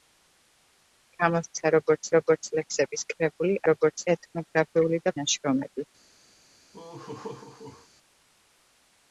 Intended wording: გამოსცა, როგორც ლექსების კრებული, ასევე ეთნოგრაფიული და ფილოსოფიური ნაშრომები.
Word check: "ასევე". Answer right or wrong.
wrong